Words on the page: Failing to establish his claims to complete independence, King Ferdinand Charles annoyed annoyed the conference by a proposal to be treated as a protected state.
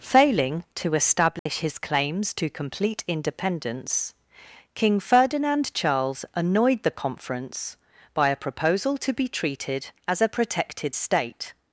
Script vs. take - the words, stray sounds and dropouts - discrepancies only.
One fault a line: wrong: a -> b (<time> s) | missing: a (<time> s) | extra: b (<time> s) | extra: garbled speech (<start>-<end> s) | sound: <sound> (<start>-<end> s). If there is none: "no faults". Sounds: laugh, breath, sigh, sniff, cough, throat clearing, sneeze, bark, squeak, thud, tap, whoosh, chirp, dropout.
sound: dropout (1.4-1.5 s)
missing: annoyed (6.8 s)